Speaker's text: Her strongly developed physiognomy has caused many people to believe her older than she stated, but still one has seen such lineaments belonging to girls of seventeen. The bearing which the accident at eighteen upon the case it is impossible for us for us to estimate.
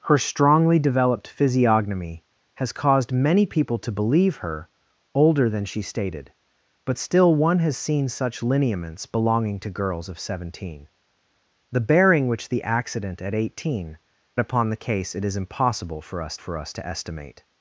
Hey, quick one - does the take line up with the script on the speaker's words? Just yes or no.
yes